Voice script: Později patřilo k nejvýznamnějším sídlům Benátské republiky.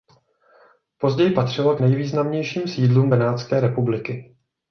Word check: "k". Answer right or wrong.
right